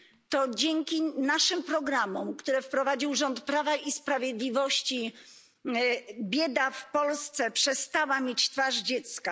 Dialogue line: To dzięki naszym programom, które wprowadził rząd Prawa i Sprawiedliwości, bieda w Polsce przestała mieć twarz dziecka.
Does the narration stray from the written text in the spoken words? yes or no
no